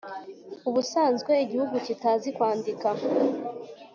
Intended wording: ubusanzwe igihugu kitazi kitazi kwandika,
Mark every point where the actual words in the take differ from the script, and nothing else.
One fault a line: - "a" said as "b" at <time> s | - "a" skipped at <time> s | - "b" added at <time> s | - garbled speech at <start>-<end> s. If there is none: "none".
- "kitazi" skipped at 2.3 s